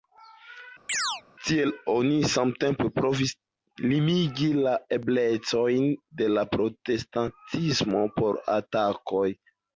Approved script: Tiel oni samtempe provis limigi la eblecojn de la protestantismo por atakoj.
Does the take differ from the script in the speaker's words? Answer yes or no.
no